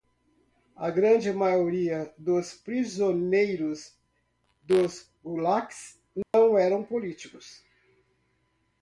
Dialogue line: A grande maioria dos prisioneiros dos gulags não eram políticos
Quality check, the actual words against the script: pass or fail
pass